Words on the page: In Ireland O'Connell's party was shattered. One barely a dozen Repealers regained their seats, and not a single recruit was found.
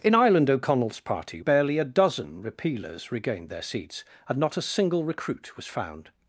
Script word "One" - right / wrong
wrong